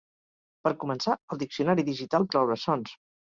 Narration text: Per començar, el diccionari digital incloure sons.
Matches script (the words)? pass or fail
pass